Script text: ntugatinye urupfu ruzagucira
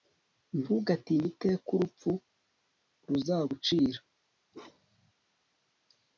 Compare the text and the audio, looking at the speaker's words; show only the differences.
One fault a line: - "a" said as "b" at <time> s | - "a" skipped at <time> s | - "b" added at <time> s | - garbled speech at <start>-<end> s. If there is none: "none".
- "iteka" added at 1.3 s